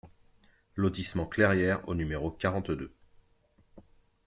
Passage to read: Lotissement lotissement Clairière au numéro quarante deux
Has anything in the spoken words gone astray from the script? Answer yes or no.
yes